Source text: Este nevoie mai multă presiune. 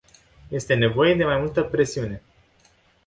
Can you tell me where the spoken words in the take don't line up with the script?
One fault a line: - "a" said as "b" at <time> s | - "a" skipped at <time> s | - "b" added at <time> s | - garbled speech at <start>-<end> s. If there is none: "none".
- "de" added at 1.1 s